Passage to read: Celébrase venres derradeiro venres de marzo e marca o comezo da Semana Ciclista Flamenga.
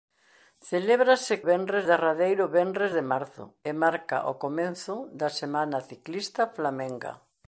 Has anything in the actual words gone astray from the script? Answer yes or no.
no